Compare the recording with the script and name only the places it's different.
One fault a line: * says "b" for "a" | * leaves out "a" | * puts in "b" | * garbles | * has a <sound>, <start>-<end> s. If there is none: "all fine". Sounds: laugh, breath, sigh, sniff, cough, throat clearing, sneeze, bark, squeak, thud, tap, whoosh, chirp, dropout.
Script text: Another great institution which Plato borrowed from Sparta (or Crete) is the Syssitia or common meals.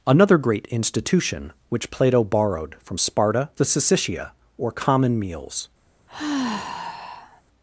* leaves out "or Crete is"
* has a sigh, 6.1-7.4 s